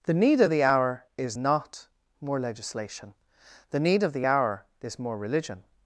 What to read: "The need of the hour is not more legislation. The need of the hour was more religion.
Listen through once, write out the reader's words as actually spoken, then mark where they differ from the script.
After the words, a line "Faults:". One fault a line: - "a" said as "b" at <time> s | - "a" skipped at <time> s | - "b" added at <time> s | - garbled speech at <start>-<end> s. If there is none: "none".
"The need of the hour is not more legislation. The need of the hour is more religion.
Faults:
- "was" said as "is" at 4.8 s